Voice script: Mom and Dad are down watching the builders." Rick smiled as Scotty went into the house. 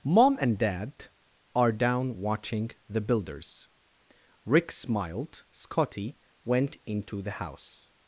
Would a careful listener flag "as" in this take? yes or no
yes